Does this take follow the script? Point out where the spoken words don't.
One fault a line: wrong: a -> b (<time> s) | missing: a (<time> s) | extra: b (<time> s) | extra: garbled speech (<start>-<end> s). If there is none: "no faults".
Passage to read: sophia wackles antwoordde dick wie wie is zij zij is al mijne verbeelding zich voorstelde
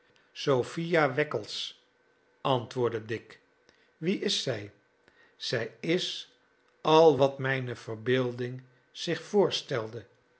missing: wie (4.2 s)
extra: wat (7.2 s)